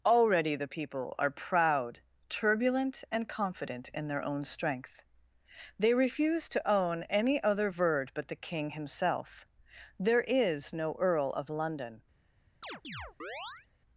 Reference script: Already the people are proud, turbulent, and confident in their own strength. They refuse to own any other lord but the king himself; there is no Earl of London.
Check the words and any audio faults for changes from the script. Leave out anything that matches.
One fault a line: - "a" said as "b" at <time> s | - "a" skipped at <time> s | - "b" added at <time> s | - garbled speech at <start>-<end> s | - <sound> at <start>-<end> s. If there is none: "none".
- "lord" said as "verd" at 7.7 s
- chirp at 12.6-13.7 s